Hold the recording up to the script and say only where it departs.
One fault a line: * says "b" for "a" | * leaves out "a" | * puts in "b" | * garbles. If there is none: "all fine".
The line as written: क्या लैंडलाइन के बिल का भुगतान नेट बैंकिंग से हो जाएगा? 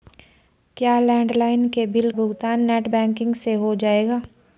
* leaves out "का"